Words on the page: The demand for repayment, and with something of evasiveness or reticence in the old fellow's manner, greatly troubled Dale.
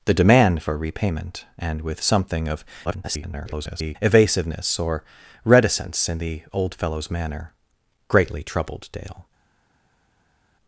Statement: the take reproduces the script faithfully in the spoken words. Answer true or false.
false